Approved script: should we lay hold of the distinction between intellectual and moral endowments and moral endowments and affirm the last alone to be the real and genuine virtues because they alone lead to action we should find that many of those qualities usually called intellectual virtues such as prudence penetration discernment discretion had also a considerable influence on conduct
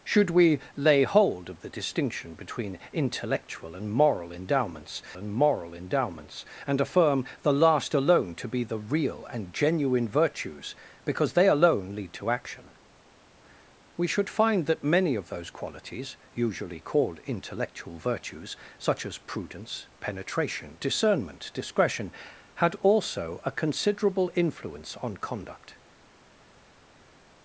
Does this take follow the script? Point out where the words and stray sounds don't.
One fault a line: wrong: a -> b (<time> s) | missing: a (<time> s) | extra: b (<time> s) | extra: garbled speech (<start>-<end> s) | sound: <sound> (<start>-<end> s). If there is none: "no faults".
no faults